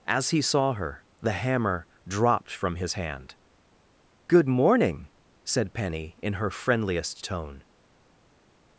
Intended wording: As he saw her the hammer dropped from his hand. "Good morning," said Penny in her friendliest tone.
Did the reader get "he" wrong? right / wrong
right